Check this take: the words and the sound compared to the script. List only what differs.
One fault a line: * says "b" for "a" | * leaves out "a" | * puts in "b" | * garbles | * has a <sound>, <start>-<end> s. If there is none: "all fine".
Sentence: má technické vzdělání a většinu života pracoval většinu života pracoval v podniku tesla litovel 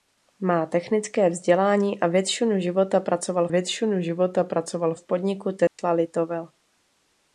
* has a dropout, 5.7-5.8 s